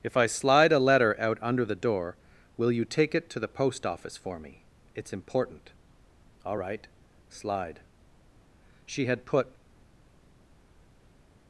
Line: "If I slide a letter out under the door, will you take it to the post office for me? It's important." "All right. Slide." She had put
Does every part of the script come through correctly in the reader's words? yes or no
yes